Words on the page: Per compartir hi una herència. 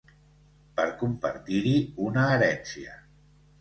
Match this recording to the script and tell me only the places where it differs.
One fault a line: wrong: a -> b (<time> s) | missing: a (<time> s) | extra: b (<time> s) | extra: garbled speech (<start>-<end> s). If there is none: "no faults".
no faults